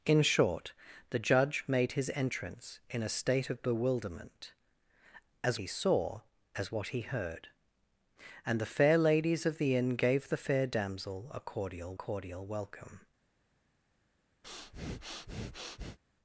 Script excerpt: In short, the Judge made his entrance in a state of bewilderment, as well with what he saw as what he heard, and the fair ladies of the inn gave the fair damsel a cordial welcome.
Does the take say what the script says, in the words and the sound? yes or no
no